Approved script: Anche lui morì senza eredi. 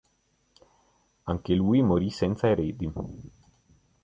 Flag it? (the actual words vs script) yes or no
no